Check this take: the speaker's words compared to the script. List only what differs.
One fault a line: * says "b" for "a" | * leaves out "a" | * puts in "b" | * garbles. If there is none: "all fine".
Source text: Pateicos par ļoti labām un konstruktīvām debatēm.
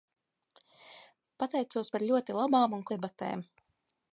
* leaves out "konstruktīvām"